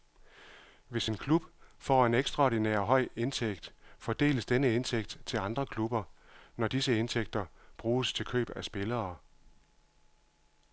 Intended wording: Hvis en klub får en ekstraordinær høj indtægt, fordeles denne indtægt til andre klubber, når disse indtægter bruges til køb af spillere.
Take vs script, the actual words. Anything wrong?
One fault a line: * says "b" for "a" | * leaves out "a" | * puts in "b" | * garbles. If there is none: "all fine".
all fine